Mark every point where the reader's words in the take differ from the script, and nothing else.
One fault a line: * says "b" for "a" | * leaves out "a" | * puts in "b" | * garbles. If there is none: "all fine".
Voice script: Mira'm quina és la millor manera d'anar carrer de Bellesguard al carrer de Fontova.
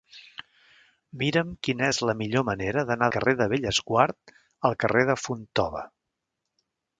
all fine